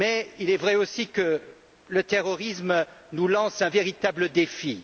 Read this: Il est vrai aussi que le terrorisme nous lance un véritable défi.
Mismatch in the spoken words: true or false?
false